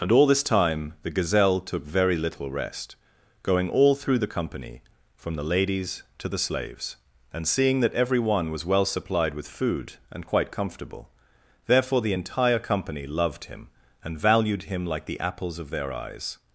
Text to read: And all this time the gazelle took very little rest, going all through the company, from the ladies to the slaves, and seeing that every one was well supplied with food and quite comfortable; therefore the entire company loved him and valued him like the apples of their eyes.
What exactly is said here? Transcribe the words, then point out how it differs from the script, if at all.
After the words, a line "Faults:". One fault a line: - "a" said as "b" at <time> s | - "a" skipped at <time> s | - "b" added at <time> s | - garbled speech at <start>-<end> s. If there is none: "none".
And all this time the gazelle took very little rest, going all through the company, from the ladies to the slaves, and seeing that every one was well supplied with food and quite comfortable; therefore the entire company loved him and valued him like the apples of their eyes.
Faults:
none